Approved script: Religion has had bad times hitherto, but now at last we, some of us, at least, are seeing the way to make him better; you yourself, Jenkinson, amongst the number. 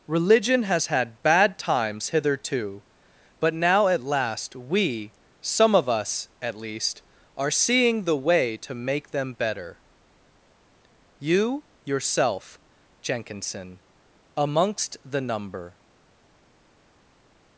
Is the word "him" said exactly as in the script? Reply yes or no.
no